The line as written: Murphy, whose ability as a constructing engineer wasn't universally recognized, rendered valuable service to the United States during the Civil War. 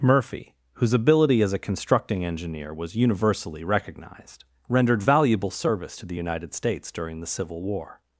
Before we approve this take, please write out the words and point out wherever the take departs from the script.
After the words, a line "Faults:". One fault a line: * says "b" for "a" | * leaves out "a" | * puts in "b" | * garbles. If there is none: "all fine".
Murphy, whose ability as a constructing engineer was universally recognized, rendered valuable service to the United States during the Civil War.
Faults:
* says "was" for "wasn't"